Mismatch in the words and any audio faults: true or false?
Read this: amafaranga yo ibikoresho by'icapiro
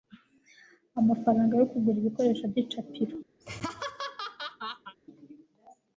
true